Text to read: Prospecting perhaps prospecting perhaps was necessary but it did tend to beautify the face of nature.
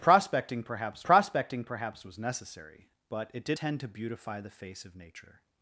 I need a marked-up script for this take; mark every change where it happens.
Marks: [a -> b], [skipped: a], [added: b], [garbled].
Prospecting perhaps prospecting perhaps was necessary but it did tend to beautify the face of nature.